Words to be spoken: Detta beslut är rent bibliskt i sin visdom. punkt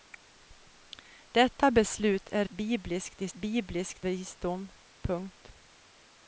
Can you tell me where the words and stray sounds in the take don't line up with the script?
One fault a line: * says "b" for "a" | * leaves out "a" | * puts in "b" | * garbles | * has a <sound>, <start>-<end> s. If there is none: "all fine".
* leaves out "rent"
* says "bibliskt" for "sin"